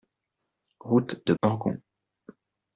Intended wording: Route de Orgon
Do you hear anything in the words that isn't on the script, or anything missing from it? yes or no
no